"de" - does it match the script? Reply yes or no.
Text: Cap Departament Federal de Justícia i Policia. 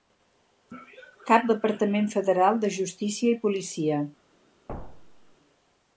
yes